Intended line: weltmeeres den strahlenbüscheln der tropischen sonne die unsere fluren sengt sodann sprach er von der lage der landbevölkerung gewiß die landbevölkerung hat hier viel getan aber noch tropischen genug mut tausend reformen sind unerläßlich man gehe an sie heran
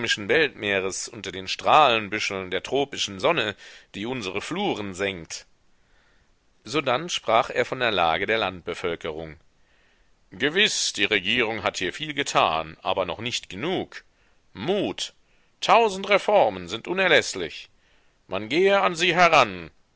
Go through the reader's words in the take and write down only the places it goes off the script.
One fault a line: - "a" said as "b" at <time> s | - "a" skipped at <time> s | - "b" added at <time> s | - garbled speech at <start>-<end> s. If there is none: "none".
- "unter" added at 1.1 s
- "landbevölkerung" said as "regierung" at 11.1 s
- "tropischen" said as "nicht" at 13.2 s